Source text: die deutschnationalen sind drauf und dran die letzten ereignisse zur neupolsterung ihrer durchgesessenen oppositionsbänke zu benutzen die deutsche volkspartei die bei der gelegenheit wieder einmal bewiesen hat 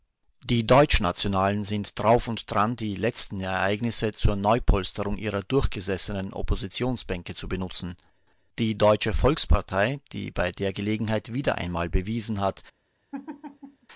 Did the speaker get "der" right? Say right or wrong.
right